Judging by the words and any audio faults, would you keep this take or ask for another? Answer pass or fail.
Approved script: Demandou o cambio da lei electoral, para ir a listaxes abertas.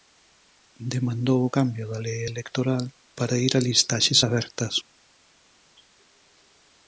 pass